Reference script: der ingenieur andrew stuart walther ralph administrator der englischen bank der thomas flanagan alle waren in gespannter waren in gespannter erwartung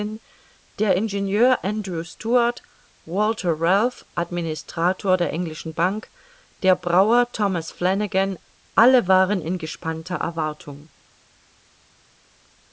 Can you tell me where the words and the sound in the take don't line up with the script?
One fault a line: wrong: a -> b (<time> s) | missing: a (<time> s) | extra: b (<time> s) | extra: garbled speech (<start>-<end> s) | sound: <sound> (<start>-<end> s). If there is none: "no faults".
extra: brauer (6.8 s)
missing: waren in gespannter (10.1 s)